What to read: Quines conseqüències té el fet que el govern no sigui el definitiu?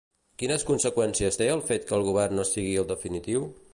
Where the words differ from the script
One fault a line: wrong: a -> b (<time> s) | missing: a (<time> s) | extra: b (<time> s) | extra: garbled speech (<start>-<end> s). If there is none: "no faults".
no faults